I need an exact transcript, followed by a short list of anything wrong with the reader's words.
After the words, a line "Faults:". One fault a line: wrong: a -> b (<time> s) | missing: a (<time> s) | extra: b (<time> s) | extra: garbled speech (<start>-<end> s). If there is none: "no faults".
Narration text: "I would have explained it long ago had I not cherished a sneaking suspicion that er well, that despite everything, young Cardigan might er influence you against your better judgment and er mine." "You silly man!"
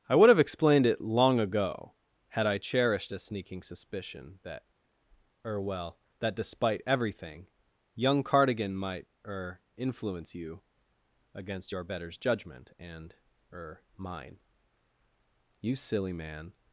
"I would have explained it long ago had I cherished a sneaking suspicion that er well, that despite everything, young Cardigan might er influence you against your betters judgment and er mine." "You silly man!"
Faults:
missing: not (2.6 s)
wrong: better -> betters (11.8 s)